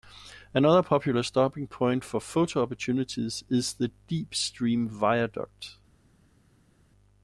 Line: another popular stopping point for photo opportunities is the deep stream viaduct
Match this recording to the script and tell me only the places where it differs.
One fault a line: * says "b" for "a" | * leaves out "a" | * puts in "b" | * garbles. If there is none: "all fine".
all fine